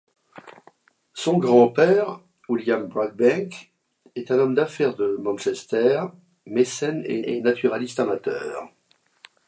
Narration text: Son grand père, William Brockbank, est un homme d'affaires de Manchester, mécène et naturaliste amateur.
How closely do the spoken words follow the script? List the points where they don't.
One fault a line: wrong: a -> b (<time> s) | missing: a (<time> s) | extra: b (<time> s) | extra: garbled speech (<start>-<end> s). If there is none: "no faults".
extra: et (7.2 s)